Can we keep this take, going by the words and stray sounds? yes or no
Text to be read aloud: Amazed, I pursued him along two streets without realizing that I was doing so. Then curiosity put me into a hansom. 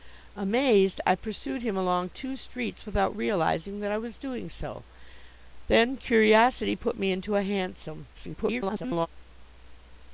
no